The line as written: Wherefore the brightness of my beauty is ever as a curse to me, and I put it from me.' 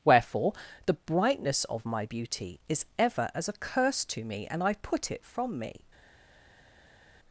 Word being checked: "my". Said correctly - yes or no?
yes